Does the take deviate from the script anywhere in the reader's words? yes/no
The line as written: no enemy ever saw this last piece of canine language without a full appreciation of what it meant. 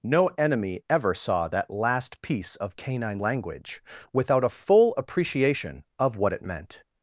yes